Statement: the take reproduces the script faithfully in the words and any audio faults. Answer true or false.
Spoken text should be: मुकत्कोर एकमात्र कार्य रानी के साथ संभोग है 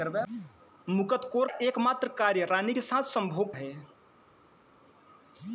true